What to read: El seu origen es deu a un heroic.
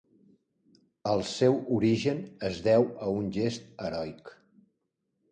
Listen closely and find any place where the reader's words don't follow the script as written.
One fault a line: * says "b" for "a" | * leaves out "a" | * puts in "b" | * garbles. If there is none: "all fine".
* puts in "gest"